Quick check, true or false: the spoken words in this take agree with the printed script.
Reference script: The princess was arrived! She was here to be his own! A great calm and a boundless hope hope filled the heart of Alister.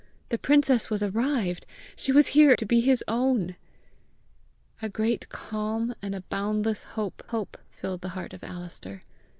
true